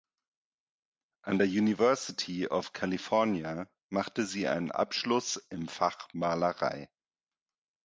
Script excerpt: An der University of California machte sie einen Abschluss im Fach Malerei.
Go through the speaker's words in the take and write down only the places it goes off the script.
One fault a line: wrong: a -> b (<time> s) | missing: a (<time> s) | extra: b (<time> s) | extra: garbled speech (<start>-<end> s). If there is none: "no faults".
no faults